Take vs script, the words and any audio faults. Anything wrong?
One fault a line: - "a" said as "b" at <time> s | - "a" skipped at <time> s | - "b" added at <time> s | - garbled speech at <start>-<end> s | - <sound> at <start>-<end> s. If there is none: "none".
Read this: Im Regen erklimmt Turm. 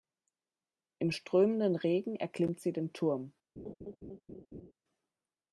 - "strömenden" added at 1.1 s
- "sie den" added at 2.6 s
- laugh at 3.6-4.7 s